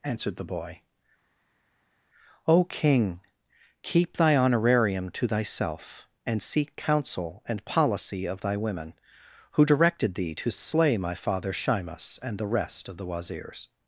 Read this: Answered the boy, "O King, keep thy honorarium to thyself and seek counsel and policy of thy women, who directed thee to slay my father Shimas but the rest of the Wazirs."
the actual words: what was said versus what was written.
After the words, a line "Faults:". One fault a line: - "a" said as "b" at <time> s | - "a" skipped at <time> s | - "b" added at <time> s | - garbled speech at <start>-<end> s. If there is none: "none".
Answered the boy, "O King, keep thy honorarium to thyself and seek counsel and policy of thy women, who directed thee to slay my father Shimas and the rest of the Wazirs."
Faults:
- "but" said as "and" at 12.2 s